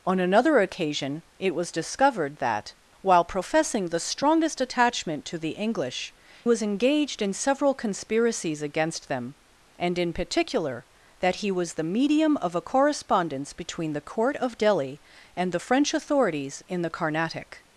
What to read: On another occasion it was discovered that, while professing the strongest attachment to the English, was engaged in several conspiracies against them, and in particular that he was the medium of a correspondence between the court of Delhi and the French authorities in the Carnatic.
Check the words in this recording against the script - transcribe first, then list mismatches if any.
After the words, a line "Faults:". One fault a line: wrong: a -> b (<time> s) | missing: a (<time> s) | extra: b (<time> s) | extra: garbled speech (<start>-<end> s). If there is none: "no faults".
On another occasion it was discovered that, while professing the strongest attachment to the English, was engaged in several conspiracies against them, and in particular that he was the medium of a correspondence between the court of Delhi and the French authorities in the Carnatic.
Faults:
no faults